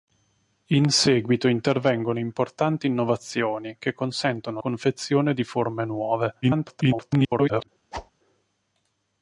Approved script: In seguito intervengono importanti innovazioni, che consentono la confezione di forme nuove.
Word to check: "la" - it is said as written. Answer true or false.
false